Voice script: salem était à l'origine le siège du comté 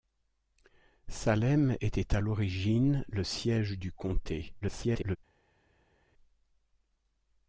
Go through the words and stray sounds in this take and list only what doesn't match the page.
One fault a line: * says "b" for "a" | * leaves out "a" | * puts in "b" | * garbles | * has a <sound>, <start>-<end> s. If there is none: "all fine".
* garbles